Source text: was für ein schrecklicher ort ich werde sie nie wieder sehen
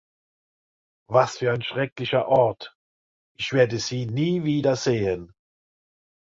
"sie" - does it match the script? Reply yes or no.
yes